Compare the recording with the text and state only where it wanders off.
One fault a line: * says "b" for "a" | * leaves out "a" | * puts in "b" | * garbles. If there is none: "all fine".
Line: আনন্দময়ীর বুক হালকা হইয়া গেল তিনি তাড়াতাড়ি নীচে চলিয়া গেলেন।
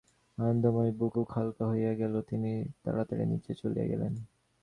* puts in "বুক"